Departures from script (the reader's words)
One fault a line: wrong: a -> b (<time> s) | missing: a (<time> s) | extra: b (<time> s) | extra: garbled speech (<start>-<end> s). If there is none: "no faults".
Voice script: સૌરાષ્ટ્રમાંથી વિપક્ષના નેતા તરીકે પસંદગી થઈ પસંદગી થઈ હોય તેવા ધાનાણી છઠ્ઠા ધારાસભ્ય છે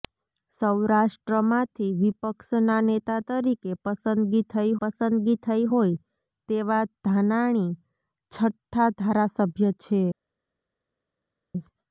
no faults